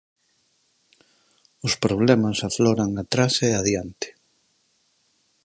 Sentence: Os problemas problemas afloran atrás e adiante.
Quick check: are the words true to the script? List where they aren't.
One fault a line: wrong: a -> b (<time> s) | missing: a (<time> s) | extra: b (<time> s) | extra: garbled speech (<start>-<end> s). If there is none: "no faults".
missing: problemas (2.4 s)